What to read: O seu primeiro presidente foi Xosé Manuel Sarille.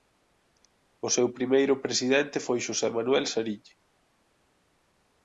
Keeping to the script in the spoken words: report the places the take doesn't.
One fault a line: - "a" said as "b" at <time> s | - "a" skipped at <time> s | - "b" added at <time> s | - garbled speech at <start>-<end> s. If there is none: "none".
none